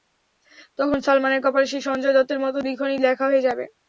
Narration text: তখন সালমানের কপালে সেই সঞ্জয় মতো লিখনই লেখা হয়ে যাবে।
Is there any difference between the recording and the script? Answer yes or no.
yes